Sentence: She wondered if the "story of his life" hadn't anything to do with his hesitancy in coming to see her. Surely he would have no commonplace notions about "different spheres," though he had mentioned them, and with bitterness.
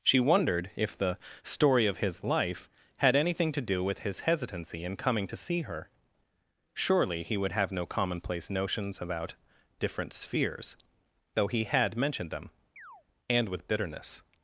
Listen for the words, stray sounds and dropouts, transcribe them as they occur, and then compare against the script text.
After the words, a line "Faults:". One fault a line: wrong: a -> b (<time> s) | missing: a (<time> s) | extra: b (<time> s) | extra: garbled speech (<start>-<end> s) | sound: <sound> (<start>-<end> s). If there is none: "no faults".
She wondered if the "story of his life" had anything to do with his hesitancy in coming to see her. Surely he would have no commonplace notions about "different spheres," though he had mentioned them, and with bitterness.
Faults:
wrong: hadn't -> had (3.0 s)
sound: chirp (12.8-13.0 s)